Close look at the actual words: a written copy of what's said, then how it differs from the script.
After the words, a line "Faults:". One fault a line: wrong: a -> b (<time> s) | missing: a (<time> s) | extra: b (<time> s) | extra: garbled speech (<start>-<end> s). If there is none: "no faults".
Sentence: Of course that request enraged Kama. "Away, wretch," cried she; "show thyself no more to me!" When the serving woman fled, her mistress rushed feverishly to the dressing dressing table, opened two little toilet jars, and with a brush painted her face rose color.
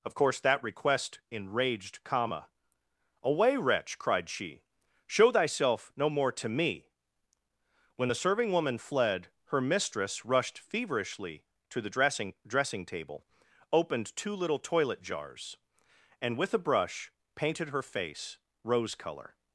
Of course that request enraged Kama. "Away, wretch," cried she; "show thyself no more to me!" When the serving woman fled, her mistress rushed feverishly to the dressing dressing table, opened two little toilet jars, and with a brush painted her face rose color.
Faults:
no faults